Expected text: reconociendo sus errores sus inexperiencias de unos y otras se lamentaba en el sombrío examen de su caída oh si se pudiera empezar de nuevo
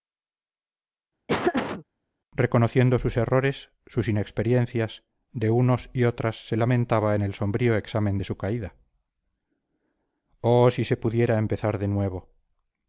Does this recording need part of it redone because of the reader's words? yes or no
no